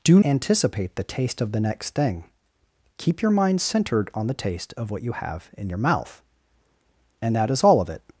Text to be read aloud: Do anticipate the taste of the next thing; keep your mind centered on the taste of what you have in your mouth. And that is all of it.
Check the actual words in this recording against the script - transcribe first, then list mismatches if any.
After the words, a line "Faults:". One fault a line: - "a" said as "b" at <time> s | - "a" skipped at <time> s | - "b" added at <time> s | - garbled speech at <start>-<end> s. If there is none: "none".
Do anticipate the taste of the next thing; keep your mind centered on the taste of what you have in your mouth. And that is all of it.
Faults:
none